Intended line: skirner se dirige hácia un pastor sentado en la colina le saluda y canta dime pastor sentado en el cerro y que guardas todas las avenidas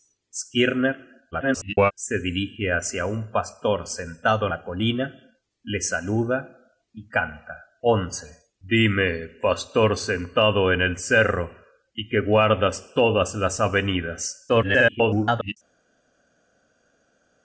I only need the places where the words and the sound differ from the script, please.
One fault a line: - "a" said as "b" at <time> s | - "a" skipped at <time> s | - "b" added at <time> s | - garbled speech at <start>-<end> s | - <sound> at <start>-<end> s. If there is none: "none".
- garbled speech at 1.3-1.9 s
- "en" skipped at 4.5 s
- garbled speech at 14.5-15.6 s